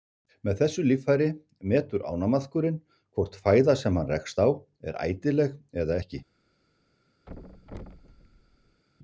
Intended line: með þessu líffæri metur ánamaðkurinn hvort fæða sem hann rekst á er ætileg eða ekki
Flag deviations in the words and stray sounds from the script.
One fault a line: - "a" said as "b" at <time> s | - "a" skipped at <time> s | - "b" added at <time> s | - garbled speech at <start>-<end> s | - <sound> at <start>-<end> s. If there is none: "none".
- thud at 7.3-8.8 s